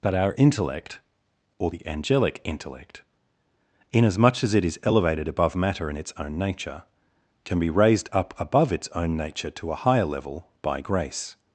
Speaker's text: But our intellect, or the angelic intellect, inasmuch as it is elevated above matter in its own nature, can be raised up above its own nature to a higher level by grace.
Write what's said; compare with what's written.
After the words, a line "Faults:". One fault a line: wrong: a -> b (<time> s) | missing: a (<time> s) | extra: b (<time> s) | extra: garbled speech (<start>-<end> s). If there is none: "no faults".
But our intellect, or the angelic intellect, inasmuch as it is elevated above matter in its own nature, can be raised up above its own nature to a higher level by grace.
Faults:
no faults